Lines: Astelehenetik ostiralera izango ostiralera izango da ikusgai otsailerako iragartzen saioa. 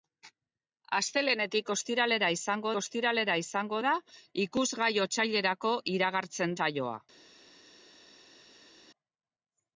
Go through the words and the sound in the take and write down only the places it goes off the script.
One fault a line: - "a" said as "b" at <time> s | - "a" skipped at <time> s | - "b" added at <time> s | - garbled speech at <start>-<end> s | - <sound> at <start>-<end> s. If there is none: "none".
none